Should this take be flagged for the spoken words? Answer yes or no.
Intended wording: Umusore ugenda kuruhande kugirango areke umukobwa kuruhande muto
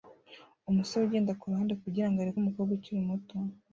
yes